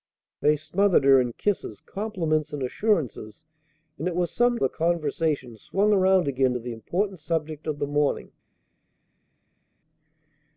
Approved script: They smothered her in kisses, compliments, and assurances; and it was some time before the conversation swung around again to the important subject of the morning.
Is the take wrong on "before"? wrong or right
wrong